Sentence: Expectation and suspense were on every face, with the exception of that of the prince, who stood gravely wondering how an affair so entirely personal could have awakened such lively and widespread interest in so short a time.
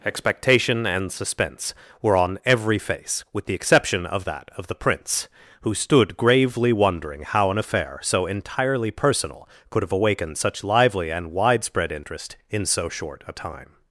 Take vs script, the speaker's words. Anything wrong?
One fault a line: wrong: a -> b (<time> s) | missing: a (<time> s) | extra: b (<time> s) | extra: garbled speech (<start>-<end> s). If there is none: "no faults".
no faults